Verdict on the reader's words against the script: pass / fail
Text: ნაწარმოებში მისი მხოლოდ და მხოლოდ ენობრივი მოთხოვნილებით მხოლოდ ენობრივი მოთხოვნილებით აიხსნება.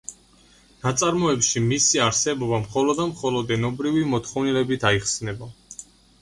fail